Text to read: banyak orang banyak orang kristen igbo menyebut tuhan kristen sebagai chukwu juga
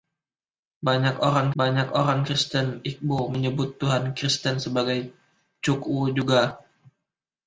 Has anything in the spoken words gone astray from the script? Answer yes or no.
no